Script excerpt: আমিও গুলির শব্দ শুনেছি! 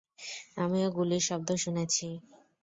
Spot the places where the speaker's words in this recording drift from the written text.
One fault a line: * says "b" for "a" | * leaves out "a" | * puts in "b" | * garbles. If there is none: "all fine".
all fine